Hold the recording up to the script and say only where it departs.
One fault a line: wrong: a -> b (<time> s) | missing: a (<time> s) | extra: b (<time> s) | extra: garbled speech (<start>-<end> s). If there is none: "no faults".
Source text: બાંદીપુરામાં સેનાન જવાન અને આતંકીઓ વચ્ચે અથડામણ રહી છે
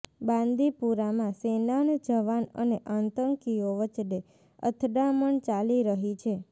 extra: ચાલી (5.5 s)